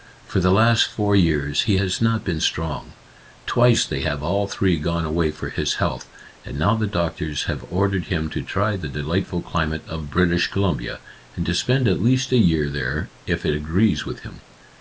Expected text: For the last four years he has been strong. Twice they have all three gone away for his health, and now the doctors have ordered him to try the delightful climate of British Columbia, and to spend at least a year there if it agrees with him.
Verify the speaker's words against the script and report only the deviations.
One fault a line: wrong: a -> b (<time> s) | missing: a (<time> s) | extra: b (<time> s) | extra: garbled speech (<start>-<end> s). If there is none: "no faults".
extra: not (2.0 s)